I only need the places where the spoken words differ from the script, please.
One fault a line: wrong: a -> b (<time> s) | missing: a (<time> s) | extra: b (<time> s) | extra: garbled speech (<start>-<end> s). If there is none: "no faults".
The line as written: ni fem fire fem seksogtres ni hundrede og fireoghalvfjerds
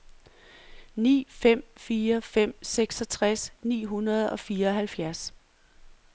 no faults